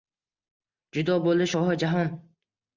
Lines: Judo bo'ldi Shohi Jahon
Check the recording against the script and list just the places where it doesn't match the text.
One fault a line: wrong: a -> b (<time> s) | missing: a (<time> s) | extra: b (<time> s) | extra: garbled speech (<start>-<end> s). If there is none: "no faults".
no faults